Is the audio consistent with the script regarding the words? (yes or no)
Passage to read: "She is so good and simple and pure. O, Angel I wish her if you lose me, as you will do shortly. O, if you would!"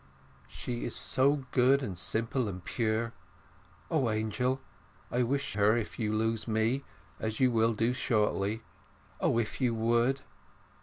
yes